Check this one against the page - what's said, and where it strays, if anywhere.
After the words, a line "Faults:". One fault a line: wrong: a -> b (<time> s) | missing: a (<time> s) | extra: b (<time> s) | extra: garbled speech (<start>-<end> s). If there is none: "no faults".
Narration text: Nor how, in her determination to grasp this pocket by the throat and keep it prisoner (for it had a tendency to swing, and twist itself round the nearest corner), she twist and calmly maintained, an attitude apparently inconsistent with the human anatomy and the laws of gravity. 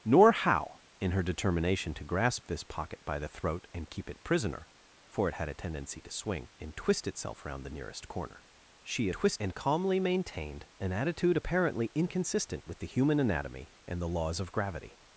Nor how, in her determination to grasp this pocket by the throat and keep it prisoner (for it had a tendency to swing, and twist itself round the nearest corner), she twist and calmly maintained, an attitude apparently inconsistent with the human anatomy and the laws of gravity.
Faults:
no faults